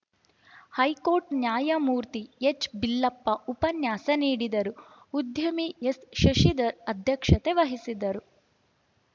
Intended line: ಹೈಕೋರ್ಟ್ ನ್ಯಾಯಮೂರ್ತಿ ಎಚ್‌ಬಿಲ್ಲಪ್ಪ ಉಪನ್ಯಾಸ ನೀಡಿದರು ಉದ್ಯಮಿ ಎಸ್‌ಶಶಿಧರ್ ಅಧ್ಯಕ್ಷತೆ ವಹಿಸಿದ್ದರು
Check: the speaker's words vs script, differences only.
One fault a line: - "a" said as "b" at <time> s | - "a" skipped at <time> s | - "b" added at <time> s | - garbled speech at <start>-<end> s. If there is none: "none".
none